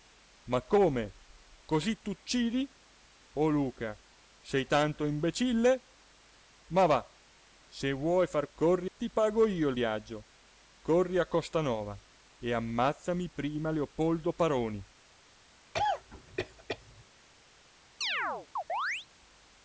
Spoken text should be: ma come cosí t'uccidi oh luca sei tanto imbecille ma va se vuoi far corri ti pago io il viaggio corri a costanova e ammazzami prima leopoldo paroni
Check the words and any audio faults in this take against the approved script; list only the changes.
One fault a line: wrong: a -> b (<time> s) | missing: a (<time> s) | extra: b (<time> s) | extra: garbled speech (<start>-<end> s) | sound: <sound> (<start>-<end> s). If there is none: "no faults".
sound: cough (15.7-17.1 s)
sound: chirp (18.0-19.1 s)